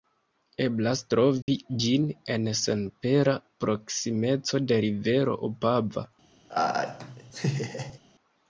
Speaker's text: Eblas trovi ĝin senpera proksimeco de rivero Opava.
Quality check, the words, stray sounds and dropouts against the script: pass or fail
fail